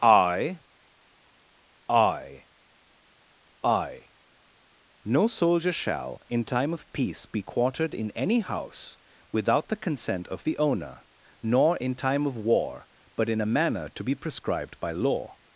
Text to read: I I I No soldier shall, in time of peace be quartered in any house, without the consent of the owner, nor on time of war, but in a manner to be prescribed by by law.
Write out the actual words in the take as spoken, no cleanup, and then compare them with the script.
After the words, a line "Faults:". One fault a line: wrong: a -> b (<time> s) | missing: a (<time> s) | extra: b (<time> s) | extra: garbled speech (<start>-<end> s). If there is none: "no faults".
I I I No soldier shall, in time of peace be quartered in any house, without the consent of the owner, nor in time of war, but in a manner to be prescribed by law.
Faults:
wrong: on -> in (11.8 s)
missing: by (14.9 s)